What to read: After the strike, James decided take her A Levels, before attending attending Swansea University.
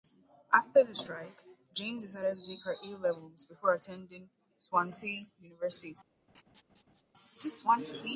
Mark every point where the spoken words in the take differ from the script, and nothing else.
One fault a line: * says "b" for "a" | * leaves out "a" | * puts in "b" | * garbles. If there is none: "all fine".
* puts in "to"
* leaves out "attending"